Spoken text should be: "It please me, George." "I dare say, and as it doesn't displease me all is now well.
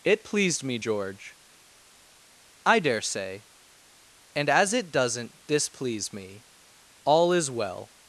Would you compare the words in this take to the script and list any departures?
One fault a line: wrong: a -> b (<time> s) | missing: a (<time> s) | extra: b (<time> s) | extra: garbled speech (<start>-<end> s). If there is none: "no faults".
wrong: please -> pleased (0.2 s)
missing: now (7.5 s)